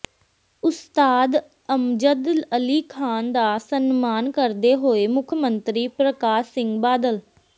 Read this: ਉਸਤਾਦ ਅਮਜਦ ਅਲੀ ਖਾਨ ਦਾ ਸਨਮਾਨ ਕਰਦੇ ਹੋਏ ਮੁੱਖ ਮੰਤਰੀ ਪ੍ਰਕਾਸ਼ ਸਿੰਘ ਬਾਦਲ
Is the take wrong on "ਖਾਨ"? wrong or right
right